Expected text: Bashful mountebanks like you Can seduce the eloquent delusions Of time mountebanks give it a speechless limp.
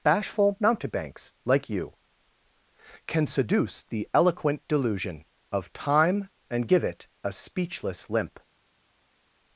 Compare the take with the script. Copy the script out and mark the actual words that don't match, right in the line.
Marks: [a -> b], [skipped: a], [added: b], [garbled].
Bashful mountebanks like you Can seduce the eloquent [delusions -> delusion] Of time [mountebanks -> and] give it a speechless limp.